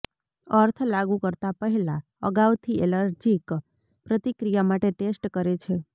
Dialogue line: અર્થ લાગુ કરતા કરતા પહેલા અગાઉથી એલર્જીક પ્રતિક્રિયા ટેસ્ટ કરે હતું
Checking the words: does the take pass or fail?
fail